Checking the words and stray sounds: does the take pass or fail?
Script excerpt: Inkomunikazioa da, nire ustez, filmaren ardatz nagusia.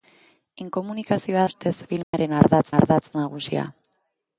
fail